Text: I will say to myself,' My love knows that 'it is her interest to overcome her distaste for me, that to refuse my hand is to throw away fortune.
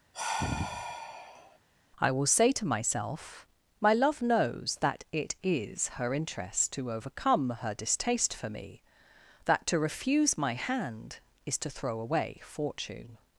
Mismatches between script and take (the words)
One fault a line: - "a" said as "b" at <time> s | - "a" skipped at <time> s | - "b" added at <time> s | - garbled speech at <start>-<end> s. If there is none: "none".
none